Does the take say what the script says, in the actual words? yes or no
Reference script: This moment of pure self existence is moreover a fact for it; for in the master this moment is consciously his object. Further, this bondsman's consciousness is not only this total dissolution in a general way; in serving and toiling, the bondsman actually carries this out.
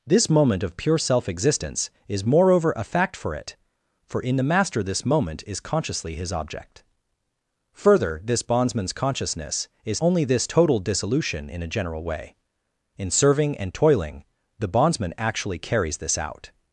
no